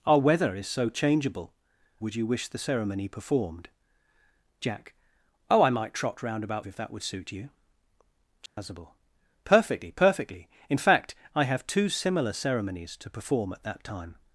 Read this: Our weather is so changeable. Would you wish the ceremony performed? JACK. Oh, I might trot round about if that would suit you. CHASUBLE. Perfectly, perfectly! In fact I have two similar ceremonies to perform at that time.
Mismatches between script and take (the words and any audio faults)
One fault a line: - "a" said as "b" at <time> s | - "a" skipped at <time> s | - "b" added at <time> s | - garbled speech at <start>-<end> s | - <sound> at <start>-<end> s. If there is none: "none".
- dropout at 8.5-8.6 s